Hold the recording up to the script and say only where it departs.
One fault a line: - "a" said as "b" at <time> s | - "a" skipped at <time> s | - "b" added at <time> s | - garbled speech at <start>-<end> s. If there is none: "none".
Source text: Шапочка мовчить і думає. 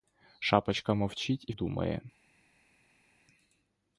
none